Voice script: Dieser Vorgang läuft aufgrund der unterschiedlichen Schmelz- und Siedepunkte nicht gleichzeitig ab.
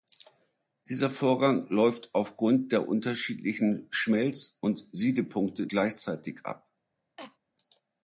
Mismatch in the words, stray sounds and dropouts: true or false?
true